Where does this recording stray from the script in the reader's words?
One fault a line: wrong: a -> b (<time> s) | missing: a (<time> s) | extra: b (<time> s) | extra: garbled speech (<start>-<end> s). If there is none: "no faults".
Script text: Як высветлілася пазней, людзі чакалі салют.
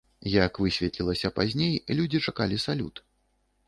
no faults